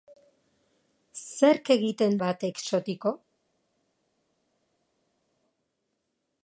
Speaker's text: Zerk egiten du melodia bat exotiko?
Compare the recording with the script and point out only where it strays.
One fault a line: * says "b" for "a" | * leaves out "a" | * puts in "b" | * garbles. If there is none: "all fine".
* leaves out "du melodia"